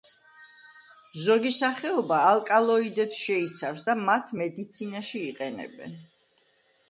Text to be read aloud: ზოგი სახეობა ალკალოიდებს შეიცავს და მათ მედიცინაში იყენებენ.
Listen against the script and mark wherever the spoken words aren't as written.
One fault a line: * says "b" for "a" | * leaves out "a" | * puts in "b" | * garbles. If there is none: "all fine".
all fine